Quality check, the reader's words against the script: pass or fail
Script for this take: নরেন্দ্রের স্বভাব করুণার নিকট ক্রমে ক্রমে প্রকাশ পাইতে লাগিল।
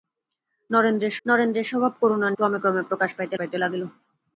fail